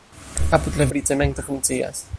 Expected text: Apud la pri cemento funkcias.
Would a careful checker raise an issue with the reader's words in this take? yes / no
no